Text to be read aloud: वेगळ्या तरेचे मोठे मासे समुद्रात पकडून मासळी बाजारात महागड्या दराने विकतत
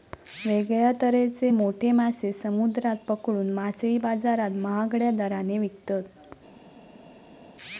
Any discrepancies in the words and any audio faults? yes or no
no